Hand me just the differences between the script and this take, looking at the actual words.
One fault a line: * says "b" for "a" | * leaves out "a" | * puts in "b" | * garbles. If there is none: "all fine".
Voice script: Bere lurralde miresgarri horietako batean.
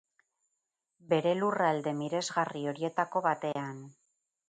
all fine